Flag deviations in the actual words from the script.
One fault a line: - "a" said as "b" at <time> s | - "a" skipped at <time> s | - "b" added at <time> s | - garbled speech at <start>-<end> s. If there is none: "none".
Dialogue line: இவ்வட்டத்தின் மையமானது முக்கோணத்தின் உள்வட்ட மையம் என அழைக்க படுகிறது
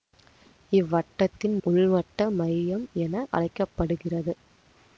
- "மையமானது முக்கோணத்தின்" skipped at 1.6 s